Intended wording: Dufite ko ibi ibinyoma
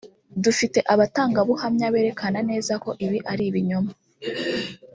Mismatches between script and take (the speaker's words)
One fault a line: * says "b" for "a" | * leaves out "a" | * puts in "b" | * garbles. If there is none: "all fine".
* puts in "abatangabuhamya berekana neza"
* puts in "ari"